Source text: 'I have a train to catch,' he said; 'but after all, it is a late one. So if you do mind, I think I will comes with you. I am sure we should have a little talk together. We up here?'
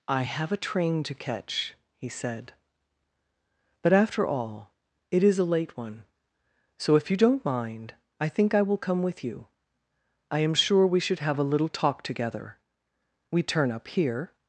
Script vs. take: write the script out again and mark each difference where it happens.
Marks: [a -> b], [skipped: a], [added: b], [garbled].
'I have a train to catch,' he said; 'but after all, it is a late one. So if you [do -> don't] mind, I think I will [comes -> come] with you. I am sure we should have a little talk together. We [added: turn] up here?'